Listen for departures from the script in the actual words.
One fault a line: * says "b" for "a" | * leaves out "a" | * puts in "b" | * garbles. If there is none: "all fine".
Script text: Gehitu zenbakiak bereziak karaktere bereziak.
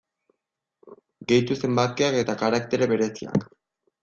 * says "eta" for "bereziak"